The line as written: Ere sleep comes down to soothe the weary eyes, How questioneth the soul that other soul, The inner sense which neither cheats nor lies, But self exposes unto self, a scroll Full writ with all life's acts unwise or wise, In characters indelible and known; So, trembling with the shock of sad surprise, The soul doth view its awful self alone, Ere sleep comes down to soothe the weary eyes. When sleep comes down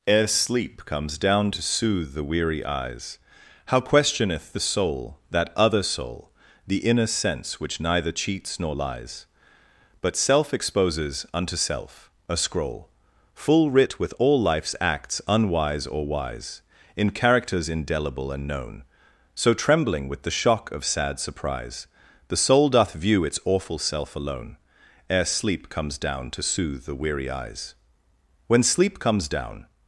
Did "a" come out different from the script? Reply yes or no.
no